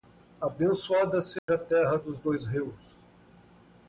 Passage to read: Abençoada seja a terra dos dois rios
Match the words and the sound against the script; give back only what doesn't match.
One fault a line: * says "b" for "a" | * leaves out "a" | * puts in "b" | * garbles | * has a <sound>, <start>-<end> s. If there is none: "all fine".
* has a dropout, 1.4-1.5 s